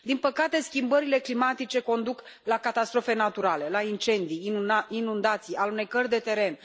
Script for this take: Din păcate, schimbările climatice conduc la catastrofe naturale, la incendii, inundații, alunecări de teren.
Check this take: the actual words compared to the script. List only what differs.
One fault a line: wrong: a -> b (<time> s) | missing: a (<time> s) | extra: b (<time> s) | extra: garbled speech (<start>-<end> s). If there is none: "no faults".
no faults